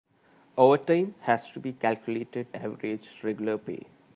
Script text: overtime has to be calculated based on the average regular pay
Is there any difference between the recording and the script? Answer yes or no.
yes